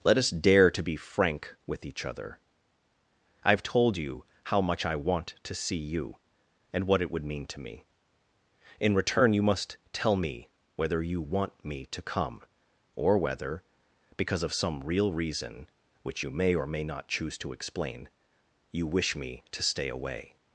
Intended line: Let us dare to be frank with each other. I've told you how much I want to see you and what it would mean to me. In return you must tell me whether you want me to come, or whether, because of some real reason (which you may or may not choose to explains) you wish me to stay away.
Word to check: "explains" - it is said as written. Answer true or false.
false